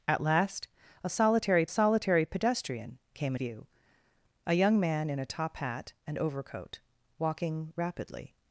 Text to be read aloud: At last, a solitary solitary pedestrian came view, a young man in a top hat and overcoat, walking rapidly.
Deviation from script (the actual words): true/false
false